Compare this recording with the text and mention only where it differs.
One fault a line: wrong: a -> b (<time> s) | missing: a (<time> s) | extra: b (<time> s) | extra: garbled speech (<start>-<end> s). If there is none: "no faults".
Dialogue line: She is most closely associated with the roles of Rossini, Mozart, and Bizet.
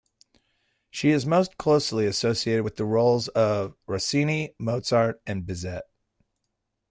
no faults